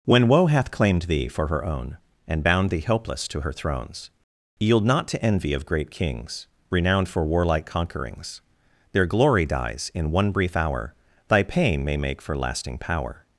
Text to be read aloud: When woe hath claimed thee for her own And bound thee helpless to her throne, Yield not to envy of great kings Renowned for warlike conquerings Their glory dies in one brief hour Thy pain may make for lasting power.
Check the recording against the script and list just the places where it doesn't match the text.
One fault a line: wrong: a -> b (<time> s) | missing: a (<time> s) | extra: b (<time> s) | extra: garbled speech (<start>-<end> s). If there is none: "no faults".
wrong: throne -> thrones (3.5 s)